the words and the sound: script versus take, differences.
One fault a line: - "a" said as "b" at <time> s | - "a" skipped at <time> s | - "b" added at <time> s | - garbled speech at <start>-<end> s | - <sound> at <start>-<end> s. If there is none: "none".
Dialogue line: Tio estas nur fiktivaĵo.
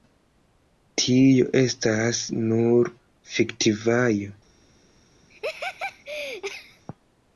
- laugh at 5.3-6.8 s